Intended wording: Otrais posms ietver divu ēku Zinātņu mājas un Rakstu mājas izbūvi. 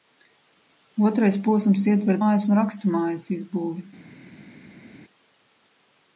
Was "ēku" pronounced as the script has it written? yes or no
no